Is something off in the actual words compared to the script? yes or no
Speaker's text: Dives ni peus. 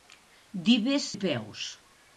no